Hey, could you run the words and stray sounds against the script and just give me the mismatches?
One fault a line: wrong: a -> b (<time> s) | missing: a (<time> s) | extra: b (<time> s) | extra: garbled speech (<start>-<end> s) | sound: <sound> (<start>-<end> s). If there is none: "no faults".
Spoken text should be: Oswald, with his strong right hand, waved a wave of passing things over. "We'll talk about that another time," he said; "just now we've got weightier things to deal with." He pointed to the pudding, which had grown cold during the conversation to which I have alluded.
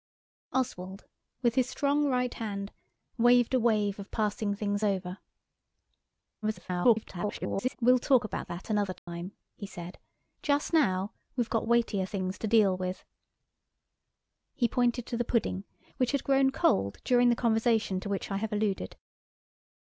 extra: garbled speech (6.4-7.8 s)
sound: dropout (9.0-9.1 s)